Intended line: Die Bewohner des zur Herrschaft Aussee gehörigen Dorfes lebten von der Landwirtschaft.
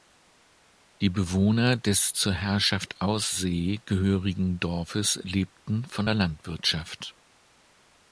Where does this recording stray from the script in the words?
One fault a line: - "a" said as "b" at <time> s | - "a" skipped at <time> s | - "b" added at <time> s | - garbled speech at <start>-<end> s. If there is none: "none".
none